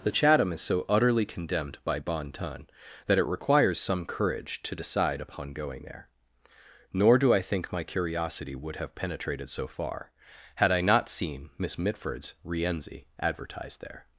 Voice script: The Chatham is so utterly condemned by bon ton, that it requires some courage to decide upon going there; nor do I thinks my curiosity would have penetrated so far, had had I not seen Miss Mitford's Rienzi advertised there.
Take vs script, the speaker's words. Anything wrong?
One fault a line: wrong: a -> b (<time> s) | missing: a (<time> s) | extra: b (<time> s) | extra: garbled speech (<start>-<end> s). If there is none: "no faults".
wrong: thinks -> think (7.4 s)
missing: had (10.7 s)